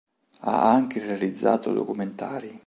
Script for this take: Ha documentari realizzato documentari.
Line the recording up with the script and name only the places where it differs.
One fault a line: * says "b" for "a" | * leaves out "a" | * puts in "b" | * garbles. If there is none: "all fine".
* says "anche" for "documentari"